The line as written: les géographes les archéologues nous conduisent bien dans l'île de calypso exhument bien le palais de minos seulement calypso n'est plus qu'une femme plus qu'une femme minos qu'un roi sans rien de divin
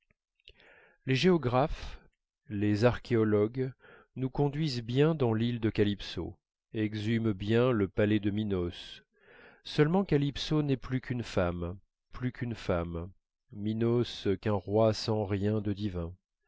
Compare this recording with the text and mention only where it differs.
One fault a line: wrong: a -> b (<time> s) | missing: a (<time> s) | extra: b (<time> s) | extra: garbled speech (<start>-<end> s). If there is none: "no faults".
no faults